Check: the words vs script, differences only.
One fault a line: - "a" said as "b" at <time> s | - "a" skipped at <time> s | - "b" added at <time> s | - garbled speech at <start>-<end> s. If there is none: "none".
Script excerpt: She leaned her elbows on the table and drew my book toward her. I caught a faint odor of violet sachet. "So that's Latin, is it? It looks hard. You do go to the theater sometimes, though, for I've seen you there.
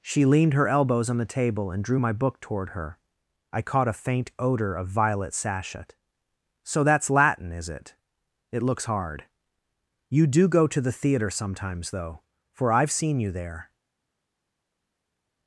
none